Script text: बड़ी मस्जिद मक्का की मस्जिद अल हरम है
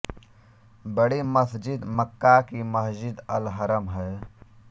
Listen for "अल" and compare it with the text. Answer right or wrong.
right